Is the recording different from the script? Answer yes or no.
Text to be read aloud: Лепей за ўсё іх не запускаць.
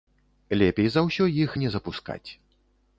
no